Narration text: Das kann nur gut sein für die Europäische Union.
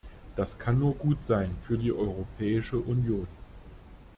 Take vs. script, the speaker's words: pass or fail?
pass